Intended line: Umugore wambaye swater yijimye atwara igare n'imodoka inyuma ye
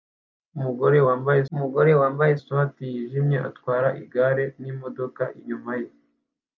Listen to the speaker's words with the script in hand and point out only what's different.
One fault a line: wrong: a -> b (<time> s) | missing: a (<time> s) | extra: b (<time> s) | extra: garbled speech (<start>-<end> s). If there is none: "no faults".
extra: umugore wambaye (1.5 s)